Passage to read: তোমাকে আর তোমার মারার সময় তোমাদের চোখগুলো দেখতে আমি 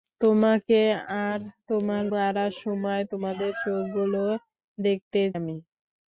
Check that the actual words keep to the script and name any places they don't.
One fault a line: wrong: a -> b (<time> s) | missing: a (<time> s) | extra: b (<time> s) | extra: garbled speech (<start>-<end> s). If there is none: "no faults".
no faults